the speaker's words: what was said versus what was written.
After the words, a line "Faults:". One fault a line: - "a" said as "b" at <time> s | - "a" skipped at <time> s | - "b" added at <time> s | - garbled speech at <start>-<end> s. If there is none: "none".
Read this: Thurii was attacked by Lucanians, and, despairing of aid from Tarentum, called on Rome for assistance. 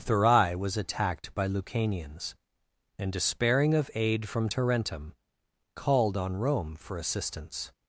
Thurii was attacked by Lucanians, and, despairing of aid from Tarentum, called on Rome for assistance.
Faults:
none